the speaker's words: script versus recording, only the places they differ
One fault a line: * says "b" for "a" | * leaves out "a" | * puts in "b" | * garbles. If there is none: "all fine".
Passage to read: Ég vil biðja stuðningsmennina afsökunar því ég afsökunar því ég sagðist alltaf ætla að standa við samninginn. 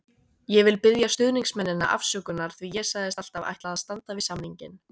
* leaves out "afsökunar því ég"